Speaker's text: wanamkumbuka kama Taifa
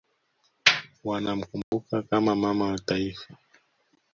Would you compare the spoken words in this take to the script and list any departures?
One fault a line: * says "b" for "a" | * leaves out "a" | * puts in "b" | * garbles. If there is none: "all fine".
* puts in "Mama wa"